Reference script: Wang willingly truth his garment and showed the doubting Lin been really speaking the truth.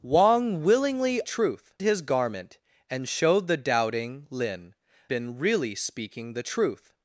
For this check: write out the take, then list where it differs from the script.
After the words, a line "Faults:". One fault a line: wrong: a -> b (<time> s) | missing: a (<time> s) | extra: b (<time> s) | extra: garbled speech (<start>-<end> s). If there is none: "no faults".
Wang willingly truth his garment and showed the doubting Lin been really speaking the truth.
Faults:
no faults